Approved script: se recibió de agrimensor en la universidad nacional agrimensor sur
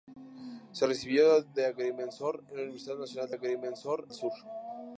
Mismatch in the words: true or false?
false